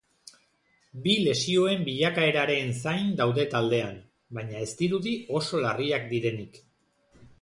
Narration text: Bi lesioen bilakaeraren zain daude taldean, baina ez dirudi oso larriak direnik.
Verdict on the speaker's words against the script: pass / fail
pass